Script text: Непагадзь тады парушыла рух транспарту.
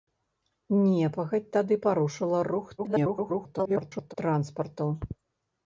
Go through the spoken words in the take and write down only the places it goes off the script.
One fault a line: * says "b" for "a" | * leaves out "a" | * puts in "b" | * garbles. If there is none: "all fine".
* garbles